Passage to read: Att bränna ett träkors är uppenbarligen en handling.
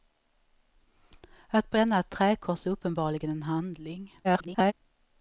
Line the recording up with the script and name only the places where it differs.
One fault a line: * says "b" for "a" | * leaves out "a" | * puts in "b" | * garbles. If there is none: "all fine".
* garbles